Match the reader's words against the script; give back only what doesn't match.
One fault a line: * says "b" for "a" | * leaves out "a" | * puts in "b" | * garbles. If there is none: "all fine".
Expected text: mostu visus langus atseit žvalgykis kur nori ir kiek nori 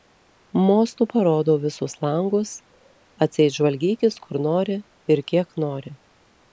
* puts in "parodau"